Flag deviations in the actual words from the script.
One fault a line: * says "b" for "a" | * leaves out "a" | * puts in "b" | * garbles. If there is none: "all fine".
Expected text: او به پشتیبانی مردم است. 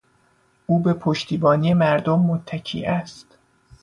* puts in "متکی"